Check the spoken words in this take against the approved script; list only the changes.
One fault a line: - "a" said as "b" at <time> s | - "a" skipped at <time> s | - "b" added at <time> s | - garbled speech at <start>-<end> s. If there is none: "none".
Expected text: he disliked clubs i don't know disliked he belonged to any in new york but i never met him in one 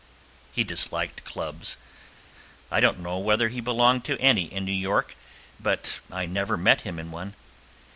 - "disliked" said as "whether" at 3.2 s